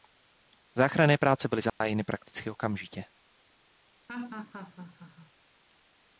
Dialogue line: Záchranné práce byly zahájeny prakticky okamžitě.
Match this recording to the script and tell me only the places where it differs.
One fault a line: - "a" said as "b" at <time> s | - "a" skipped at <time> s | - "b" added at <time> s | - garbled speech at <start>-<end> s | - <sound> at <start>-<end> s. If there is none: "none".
- dropout at 1.7-1.8 s
- laugh at 4.1-5.3 s